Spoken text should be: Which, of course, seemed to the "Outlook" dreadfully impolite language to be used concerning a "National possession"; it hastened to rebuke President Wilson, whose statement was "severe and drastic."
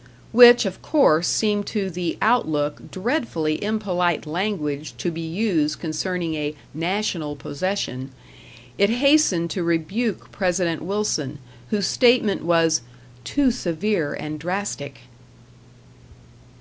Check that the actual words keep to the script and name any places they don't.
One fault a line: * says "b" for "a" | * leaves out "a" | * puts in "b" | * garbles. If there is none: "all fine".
* puts in "too"